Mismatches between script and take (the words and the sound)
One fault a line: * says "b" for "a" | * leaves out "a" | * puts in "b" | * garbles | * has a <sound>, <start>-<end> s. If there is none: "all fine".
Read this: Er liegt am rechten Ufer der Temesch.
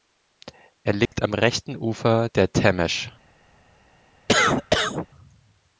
* has a dropout, 1.1-1.1 s
* has a cough, 4.3-5.1 s